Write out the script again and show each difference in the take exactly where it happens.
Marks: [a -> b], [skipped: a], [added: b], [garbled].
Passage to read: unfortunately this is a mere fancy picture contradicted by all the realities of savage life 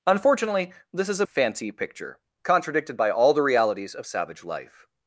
unfortunately this is a [skipped: mere] fancy picture contradicted by all the realities of savage life